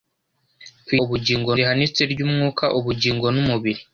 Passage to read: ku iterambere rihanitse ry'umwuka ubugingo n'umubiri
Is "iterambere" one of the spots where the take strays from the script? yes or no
yes